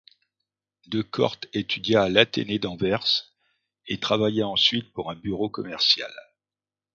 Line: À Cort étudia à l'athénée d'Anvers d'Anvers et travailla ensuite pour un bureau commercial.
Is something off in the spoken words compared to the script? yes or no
yes